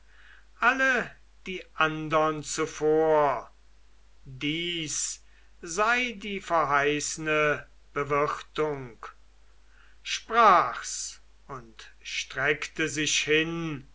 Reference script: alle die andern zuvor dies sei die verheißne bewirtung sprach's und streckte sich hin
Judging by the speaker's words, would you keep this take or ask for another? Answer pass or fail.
pass